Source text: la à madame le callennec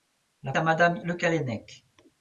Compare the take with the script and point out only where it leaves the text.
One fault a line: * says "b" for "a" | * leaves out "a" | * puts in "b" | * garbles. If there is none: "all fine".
all fine